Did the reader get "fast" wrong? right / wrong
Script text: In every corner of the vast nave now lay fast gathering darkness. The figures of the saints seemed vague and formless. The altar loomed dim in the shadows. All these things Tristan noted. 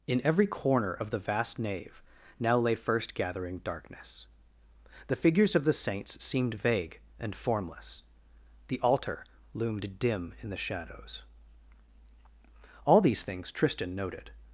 wrong